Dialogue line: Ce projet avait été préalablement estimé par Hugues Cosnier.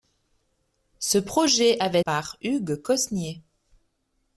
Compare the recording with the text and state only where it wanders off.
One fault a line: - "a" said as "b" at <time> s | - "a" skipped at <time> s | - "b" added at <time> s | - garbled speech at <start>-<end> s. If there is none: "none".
- "été préalablement estimé" skipped at 2.0 s